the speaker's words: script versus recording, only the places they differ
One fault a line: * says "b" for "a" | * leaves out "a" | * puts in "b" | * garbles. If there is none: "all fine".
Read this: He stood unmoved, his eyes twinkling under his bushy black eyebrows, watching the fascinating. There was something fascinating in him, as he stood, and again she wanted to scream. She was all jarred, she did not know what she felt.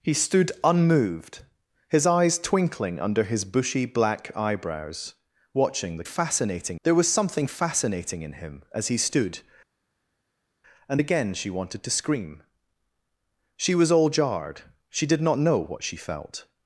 all fine